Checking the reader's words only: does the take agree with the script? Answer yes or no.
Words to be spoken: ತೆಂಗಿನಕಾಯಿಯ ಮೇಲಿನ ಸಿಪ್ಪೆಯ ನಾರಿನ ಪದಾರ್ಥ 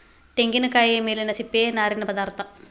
yes